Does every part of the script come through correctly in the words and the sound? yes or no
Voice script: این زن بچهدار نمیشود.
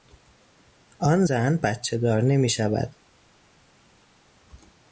no